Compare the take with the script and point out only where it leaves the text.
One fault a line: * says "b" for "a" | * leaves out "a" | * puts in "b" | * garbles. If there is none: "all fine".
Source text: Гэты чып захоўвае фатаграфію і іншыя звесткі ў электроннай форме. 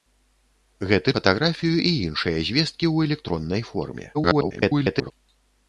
* leaves out "чып захоўвае"
* garbles